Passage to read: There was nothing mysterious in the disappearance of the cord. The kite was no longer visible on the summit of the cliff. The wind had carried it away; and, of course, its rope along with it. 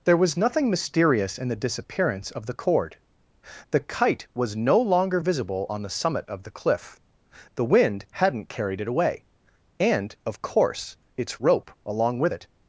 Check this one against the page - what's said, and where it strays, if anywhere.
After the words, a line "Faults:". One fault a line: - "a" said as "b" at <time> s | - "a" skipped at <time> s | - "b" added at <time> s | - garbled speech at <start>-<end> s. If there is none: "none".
There was nothing mysterious in the disappearance of the cord. The kite was no longer visible on the summit of the cliff. The wind hadn't carried it away; and, of course, its rope along with it.
Faults:
- "had" said as "hadn't" at 8.1 s